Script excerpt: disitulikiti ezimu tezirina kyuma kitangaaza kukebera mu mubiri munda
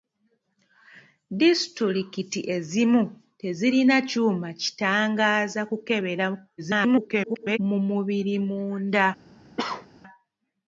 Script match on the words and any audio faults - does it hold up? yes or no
no